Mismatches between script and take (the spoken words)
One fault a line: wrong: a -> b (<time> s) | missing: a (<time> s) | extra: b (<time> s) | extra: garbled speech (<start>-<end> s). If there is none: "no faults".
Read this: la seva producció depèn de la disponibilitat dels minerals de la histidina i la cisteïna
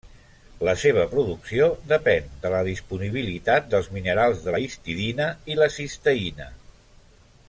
no faults